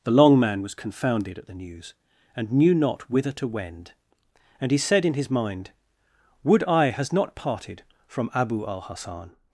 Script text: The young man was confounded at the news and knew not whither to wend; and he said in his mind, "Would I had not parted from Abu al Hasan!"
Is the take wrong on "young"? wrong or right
wrong